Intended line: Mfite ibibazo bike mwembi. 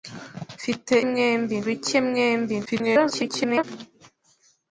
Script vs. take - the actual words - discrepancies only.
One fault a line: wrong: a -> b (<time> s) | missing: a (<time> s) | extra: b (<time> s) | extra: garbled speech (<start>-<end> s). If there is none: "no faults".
wrong: ibibazo -> mwembi (1.1 s)
extra: garbled speech (2.7-3.6 s)